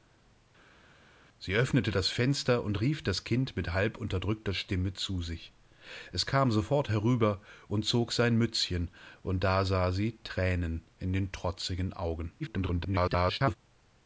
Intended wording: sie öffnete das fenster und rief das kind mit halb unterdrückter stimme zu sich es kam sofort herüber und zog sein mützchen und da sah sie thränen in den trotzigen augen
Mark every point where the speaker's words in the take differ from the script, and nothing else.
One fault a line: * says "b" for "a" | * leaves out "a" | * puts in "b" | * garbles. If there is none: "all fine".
* garbles